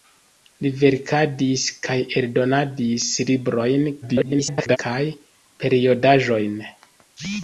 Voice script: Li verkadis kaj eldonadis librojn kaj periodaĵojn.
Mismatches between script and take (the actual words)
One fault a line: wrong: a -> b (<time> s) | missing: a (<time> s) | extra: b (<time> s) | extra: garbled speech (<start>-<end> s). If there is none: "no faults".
extra: garbled speech (4.0-4.8 s)